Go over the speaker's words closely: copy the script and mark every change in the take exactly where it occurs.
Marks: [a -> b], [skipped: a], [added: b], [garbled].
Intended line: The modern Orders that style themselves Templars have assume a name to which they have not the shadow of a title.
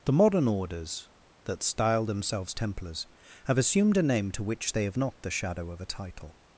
The modern Orders that style themselves Templars have [assume -> assumed] a name to which they have not the shadow of a title.